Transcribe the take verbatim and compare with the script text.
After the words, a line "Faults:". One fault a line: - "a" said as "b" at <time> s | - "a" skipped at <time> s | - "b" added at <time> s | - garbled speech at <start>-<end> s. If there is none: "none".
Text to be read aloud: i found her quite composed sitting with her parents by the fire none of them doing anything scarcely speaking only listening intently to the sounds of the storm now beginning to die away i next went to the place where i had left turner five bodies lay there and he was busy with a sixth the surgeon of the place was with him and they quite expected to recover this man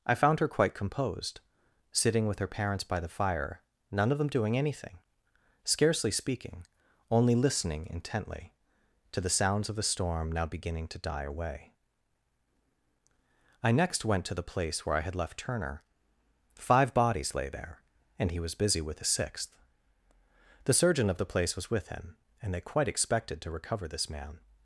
i found her quite composed sitting with her parents by the fire none of them doing anything scarcely speaking only listening intently to the sounds of the storm now beginning to die away i next went to the place where i had left turner five bodies lay there and he was busy with a sixth the surgeon of the place was with him and they quite expected to recover this man
Faults:
none